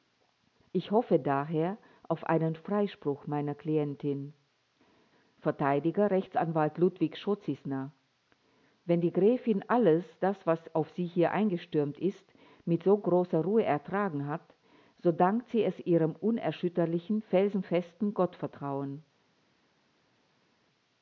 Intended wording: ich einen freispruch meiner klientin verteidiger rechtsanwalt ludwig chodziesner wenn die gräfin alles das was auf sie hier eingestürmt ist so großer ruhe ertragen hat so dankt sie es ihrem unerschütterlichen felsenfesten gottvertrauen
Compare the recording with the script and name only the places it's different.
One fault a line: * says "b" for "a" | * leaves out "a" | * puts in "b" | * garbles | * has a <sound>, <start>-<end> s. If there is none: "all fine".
* puts in "hoffe daher auf"
* puts in "mit"